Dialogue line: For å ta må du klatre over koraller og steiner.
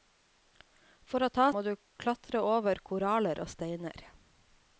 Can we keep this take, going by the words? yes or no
yes